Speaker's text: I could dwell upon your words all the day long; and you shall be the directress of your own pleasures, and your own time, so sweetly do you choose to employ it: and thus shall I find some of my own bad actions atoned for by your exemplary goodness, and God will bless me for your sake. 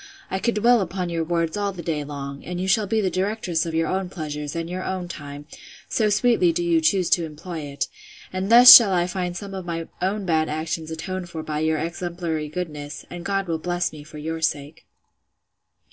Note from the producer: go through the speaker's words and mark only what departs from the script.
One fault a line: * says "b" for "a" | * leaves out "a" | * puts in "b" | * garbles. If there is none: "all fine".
all fine